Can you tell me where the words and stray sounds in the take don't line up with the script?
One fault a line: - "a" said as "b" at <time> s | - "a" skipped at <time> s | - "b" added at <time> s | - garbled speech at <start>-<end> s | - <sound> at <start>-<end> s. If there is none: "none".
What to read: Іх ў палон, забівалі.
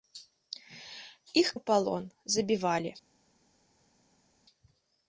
none